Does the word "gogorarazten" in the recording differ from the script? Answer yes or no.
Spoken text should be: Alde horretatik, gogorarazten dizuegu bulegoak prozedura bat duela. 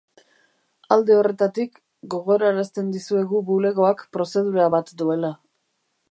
no